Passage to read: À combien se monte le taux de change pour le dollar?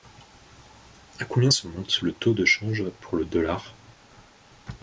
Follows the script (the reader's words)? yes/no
yes